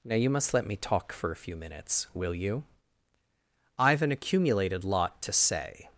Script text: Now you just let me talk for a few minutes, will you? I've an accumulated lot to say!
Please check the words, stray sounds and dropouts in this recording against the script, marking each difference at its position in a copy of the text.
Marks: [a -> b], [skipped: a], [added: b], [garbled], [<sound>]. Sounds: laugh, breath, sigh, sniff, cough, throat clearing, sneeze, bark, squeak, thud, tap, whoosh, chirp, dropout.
Now you [just -> must] let me talk for a few minutes, will you? I've an accumulated lot to say!